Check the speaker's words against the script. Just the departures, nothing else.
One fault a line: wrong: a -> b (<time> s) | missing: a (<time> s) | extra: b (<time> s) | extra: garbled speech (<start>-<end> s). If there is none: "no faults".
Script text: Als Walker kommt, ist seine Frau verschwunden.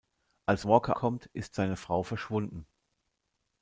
no faults